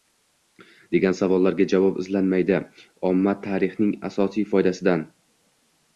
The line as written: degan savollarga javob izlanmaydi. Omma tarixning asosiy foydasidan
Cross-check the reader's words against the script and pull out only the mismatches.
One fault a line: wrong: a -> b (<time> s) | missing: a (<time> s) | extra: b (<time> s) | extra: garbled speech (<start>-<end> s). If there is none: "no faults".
no faults